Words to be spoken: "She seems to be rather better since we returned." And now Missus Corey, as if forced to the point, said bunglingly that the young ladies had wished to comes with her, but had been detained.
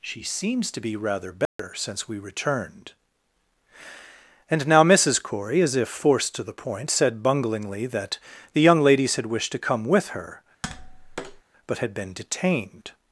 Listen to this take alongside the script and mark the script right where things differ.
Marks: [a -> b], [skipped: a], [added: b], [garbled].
"She seems to be rather better since we returned." And now Missus Corey, as if forced to the point, said bunglingly that the young ladies had wished to [comes -> come] with her, but had been detained.